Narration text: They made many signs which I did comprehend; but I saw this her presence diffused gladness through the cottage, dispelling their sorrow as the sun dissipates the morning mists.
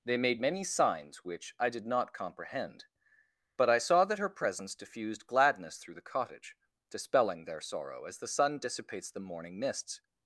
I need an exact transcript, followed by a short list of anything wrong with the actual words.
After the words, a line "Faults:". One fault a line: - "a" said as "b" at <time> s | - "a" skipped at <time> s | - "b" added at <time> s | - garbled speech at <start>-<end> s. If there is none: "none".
They made many signs which I did not comprehend; but I saw that her presence diffused gladness through the cottage, dispelling their sorrow as the sun dissipates the morning mists.
Faults:
- "not" added at 1.8 s
- "this" said as "that" at 4.0 s